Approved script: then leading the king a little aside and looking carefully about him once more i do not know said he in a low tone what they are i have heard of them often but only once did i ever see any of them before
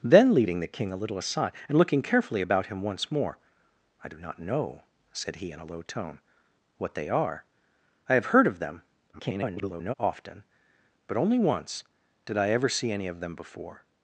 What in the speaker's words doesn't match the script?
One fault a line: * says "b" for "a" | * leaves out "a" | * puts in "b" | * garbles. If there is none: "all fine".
* garbles